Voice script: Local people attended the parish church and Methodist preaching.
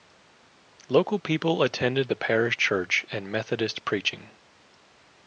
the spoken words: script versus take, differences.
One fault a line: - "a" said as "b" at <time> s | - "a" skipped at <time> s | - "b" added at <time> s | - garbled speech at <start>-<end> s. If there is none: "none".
none